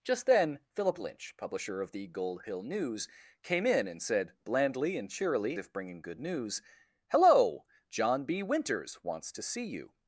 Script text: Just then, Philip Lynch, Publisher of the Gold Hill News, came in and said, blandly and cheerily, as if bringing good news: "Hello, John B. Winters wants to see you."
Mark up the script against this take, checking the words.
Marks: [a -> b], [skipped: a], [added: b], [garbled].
Just then, Philip Lynch, Publisher of the Gold Hill News, came in and said, blandly and cheerily, [skipped: as] if bringing good news: "Hello, John B. Winters wants to see you."